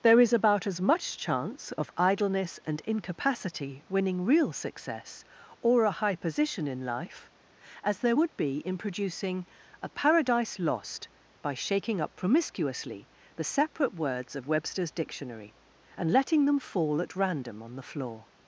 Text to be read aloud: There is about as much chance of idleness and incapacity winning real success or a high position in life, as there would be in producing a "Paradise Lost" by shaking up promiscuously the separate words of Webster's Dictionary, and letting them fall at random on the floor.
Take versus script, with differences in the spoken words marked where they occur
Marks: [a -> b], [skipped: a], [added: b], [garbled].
There is about as much chance of idleness and incapacity winning real success or a high position in life, as there would be in producing a "Paradise Lost" by shaking up promiscuously the separate words of Webster's Dictionary, and letting them fall at random on the floor.